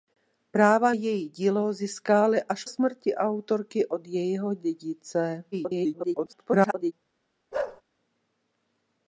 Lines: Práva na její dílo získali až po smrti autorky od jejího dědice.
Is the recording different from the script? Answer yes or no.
yes